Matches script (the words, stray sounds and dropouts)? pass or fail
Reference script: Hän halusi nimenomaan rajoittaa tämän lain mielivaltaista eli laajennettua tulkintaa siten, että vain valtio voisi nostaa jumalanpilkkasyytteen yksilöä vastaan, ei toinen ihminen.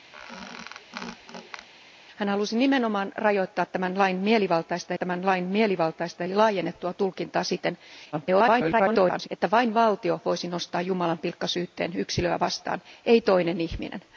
fail